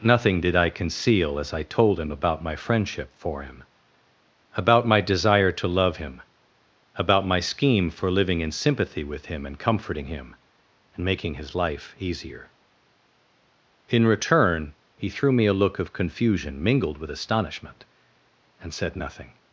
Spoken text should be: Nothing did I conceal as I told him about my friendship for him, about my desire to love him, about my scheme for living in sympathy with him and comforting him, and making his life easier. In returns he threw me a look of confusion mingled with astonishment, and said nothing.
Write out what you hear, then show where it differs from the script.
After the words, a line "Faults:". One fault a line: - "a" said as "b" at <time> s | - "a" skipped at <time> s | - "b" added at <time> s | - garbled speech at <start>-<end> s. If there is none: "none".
Nothing did I conceal as I told him about my friendship for him, about my desire to love him, about my scheme for living in sympathy with him and comforting him, and making his life easier. In return he threw me a look of confusion mingled with astonishment, and said nothing.
Faults:
- "returns" said as "return" at 14.1 s